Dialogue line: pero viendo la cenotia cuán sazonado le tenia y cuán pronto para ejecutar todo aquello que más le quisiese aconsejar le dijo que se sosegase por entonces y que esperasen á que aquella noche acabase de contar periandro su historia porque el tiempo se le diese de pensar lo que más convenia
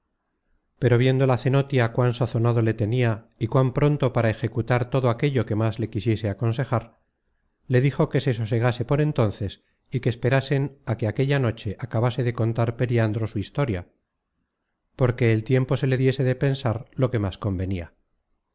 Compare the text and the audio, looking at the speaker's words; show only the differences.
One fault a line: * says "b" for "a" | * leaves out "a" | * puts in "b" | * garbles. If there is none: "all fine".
all fine